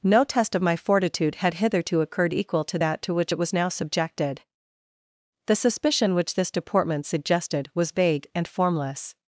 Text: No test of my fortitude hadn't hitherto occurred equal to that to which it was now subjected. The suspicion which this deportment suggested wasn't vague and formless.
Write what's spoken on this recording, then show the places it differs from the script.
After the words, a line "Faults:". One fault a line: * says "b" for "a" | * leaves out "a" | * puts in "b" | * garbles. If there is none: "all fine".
No test of my fortitude had hitherto occurred equal to that to which it was now subjected. The suspicion which this deportment suggested was vague and formless.
Faults:
* says "had" for "hadn't"
* says "was" for "wasn't"